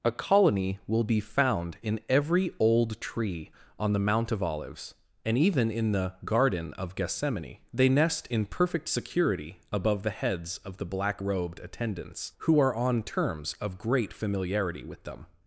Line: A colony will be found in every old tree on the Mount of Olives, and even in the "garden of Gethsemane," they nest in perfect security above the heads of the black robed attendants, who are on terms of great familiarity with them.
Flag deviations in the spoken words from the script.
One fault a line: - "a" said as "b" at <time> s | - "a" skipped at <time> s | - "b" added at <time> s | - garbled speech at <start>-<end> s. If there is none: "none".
none